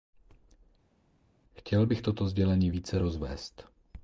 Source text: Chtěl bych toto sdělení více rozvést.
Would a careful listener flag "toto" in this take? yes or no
no